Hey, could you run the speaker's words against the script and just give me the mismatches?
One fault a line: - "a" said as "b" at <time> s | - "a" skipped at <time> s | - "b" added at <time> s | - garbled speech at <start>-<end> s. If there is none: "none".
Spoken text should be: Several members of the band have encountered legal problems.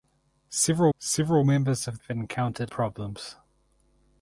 - "several" added at 1.0 s
- "the band" skipped at 2.0 s
- "legal" skipped at 2.7 s